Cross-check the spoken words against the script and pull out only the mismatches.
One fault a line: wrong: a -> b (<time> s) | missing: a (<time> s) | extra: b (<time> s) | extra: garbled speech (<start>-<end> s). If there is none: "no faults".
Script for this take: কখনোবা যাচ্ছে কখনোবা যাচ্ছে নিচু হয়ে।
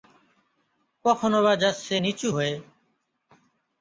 missing: কখনোবা যাচ্ছে (1.9 s)